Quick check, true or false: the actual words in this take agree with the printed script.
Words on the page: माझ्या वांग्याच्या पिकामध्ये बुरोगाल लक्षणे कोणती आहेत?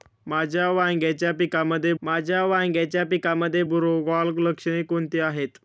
false